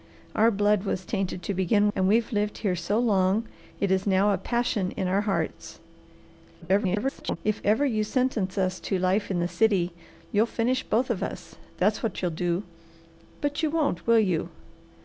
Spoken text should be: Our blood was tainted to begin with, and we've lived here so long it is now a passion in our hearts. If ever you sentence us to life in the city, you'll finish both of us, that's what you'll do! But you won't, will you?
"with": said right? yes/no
no